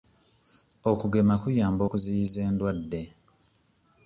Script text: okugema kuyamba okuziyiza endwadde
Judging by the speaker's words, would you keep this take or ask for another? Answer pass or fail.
pass